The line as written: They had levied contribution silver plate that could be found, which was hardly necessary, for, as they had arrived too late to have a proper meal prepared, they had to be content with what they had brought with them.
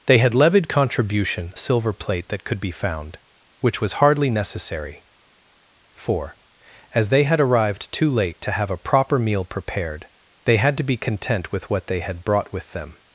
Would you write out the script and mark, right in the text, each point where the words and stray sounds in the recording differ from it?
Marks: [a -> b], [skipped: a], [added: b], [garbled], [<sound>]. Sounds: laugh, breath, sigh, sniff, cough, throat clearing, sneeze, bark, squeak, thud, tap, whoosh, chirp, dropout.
They had levied contribution silver plate that could be found, which was hardly necessary, for, as they had arrived too late to have a proper meal prepared, they had to be content with what they had brought with them.